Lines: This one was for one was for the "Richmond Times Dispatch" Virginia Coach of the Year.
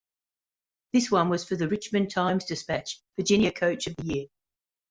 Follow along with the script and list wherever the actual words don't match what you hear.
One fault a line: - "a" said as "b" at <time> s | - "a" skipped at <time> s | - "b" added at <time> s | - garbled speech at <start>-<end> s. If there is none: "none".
- "one was for" skipped at 1.6 s